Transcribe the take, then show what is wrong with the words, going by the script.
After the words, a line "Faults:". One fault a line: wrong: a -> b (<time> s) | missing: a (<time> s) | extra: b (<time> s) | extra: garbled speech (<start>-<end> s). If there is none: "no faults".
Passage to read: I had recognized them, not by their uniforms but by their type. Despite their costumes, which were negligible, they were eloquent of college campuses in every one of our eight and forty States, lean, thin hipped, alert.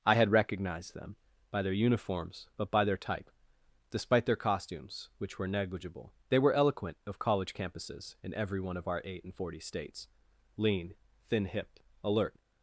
I had recognized them, by their uniforms but by their type. Despite their costumes, which were negligible, they were eloquent of college campuses in every one of our eight and forty States, lean, thin hipped, alert.
Faults:
missing: not (1.1 s)